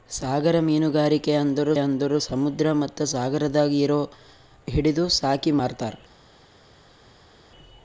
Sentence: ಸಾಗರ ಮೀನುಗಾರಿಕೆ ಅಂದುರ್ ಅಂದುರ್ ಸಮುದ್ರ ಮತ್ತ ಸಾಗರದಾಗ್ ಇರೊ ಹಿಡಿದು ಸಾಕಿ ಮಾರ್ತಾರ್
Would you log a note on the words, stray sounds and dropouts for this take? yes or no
no